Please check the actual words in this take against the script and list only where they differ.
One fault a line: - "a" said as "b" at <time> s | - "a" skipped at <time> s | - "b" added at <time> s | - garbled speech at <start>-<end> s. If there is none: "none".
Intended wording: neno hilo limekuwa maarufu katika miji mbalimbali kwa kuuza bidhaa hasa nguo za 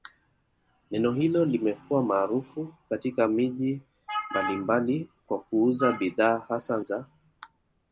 - "nguo" skipped at 6.8 s